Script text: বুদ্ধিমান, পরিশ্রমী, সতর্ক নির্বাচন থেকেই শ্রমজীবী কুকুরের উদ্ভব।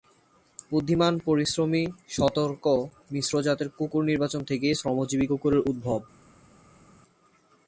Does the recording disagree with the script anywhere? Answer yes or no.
yes